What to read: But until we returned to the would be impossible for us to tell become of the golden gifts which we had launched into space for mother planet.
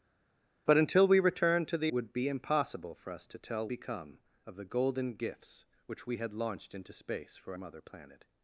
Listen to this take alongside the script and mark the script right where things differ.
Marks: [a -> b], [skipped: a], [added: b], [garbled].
But until we returned to the would be impossible for us to tell become of the golden gifts which we had launched into space for mother planet.